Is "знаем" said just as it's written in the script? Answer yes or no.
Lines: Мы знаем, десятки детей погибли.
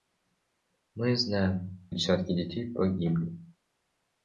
yes